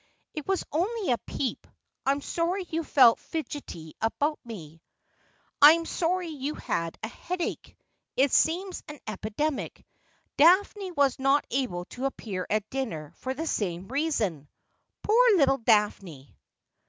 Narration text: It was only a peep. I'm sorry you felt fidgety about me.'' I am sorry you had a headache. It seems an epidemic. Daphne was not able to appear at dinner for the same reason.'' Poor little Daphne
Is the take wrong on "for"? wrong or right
right